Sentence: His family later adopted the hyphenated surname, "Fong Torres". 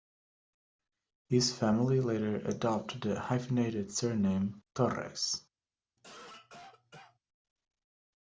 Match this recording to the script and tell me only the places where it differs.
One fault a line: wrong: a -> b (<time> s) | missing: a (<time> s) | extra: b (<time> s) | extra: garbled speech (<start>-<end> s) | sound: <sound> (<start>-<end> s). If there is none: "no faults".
missing: Fong (4.6 s)
sound: cough (6.0-7.2 s)